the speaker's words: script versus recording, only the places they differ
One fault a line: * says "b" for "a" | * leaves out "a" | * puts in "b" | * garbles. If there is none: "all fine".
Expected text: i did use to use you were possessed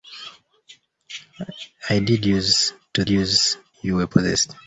all fine